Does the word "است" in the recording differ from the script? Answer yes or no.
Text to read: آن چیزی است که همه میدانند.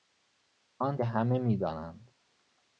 yes